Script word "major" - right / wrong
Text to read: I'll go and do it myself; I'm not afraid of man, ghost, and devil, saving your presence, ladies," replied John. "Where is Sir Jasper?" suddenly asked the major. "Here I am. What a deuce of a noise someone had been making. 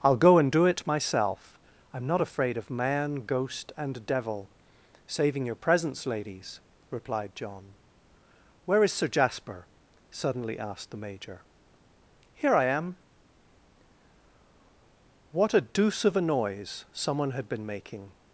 right